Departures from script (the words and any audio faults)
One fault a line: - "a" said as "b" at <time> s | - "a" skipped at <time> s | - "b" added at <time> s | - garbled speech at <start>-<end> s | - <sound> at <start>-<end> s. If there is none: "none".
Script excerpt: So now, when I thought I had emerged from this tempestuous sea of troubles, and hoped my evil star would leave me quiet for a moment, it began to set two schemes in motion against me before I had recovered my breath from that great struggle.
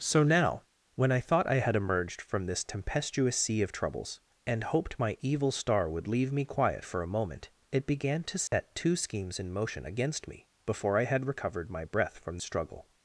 - dropout at 8.5-8.5 s
- "that great" skipped at 12.4 s